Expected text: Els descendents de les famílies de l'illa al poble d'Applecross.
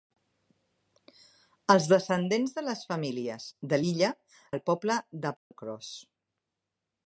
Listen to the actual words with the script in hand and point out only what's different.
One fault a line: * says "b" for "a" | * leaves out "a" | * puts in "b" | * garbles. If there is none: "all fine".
all fine